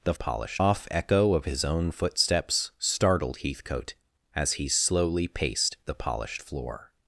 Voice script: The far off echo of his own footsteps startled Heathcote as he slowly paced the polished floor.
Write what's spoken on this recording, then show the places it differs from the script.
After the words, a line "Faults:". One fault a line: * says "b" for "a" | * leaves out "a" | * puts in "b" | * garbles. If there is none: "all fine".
The polished off echo of his own footsteps startled Heathcote as he slowly paced the polished floor.
Faults:
* says "polished" for "far"